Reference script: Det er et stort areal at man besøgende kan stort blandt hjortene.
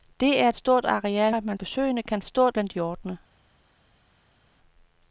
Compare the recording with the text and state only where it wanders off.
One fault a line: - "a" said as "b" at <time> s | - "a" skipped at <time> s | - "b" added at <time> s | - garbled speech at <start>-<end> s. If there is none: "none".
none